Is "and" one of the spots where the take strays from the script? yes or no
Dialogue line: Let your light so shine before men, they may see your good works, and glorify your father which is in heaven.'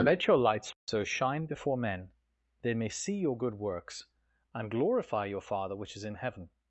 no